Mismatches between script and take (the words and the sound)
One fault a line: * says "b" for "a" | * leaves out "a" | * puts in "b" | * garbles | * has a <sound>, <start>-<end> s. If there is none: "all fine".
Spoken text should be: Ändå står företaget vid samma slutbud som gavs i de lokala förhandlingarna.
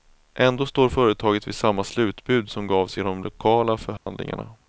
* has a dropout, 4.0-4.1 s